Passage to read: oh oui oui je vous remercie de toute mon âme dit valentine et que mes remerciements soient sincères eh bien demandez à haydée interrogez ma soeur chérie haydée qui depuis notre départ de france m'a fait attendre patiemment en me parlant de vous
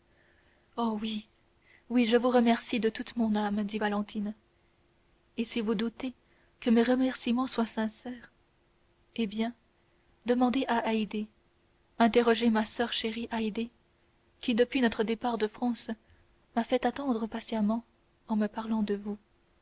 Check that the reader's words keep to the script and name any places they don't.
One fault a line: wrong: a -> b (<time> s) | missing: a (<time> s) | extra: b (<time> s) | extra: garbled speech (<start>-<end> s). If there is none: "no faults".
extra: si vous doutez (5.4 s)